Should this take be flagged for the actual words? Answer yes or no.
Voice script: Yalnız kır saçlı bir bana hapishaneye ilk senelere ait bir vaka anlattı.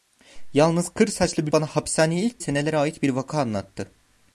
no